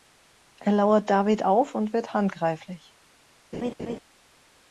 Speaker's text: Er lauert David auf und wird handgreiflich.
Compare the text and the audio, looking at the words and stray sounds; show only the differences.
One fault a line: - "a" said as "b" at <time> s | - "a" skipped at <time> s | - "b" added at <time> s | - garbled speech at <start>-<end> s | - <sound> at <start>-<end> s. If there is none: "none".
- laugh at 3.5-4.0 s